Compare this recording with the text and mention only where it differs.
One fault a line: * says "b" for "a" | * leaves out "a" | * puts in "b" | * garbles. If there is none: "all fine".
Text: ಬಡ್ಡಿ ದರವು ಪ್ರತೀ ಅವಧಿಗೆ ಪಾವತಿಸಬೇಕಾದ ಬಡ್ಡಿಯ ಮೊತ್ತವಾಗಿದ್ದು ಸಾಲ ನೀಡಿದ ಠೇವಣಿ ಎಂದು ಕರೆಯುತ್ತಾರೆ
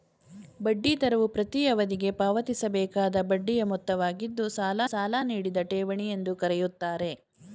* puts in "ಸಾಲ"